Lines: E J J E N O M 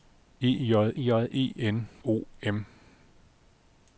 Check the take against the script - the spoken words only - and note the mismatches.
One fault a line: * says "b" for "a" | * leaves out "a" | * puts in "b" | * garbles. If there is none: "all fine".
all fine